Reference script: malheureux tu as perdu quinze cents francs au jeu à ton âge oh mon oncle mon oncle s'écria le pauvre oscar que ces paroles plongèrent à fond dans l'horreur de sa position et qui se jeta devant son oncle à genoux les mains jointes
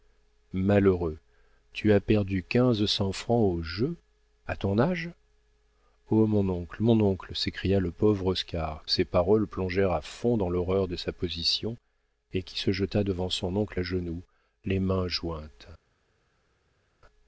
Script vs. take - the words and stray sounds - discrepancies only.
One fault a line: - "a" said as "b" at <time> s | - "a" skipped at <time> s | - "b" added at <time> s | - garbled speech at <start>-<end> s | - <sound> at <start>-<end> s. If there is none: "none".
- "que" skipped at 8.8 s